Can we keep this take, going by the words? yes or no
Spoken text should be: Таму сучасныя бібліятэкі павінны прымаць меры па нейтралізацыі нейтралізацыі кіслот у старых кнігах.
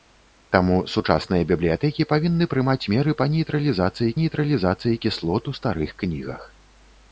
yes